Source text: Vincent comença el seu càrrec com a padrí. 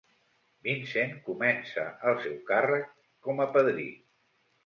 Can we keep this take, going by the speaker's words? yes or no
yes